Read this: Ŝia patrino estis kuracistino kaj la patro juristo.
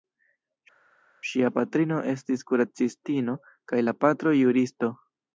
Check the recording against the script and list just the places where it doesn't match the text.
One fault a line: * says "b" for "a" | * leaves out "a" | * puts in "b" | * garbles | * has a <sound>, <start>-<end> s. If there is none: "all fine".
all fine